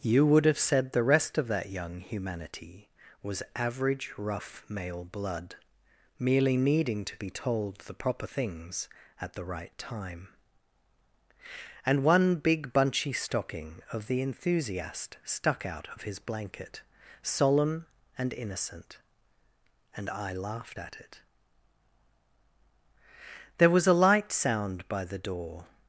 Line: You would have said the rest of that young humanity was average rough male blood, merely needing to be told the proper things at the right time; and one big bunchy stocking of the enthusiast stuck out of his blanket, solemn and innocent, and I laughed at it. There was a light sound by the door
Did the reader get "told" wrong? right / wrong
right